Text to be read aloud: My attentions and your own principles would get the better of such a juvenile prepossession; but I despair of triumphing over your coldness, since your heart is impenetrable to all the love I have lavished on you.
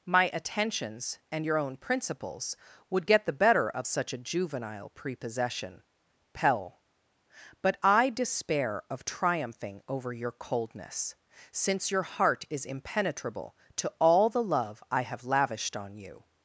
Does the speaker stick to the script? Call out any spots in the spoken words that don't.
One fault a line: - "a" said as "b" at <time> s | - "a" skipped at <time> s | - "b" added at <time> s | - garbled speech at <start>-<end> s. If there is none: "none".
- "pell" added at 6.3 s